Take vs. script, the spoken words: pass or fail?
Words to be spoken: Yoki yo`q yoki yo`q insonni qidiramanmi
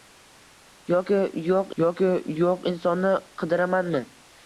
pass